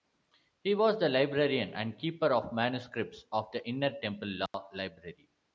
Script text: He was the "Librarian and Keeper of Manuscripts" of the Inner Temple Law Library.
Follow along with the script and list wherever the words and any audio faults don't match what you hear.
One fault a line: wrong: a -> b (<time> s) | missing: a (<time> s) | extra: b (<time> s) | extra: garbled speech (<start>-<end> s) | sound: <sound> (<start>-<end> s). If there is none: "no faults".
sound: dropout (4.5-4.5 s)